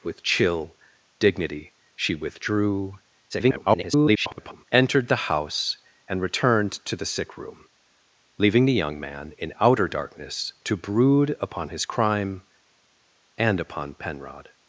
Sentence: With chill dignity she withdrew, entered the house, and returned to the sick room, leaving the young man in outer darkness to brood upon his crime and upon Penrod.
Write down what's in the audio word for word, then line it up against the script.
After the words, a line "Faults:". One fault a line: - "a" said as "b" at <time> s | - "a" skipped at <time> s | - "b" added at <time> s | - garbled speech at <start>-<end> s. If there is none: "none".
With chill dignity she withdrew, [garbled] entered the house, and returned to the sick room, leaving the young man in outer darkness to brood upon his crime and upon Penrod.
Faults:
- garbled speech at 3.3-4.6 s